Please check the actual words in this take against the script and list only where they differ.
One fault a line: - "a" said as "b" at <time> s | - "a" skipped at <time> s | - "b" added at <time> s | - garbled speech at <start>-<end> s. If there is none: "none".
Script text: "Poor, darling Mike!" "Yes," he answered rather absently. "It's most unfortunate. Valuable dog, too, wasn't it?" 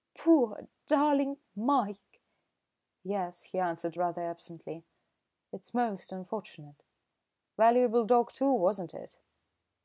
none